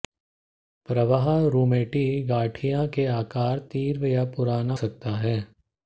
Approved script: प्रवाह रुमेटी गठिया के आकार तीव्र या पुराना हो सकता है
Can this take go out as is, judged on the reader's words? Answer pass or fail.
fail